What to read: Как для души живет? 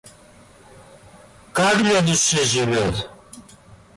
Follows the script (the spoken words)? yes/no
yes